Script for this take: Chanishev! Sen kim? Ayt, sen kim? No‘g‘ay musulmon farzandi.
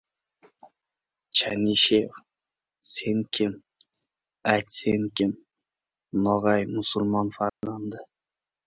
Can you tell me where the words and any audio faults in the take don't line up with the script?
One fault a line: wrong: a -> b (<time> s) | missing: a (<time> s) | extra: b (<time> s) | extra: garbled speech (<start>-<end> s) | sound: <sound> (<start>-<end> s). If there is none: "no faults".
sound: dropout (7.5-7.6 s)